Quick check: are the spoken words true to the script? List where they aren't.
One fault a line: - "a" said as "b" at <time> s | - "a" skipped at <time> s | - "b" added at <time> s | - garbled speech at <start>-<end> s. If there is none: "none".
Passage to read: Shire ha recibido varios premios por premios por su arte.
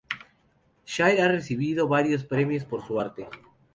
- "premios por" skipped at 2.8 s